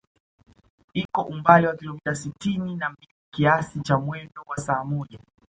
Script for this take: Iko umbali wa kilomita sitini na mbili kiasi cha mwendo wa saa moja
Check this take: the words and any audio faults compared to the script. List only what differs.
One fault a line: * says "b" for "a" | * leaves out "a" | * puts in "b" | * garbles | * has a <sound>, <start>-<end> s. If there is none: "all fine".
* has a dropout, 1.1-1.1 s